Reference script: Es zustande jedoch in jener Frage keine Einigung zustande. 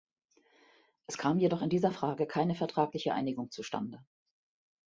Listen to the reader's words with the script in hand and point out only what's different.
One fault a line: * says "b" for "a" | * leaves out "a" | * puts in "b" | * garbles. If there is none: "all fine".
* says "kam" for "zustande"
* says "dieser" for "jener"
* puts in "vertragliche"